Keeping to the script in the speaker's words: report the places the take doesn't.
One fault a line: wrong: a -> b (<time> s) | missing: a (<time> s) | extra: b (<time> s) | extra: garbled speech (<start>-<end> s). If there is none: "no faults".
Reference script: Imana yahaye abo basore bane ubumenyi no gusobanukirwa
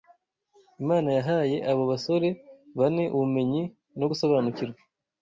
no faults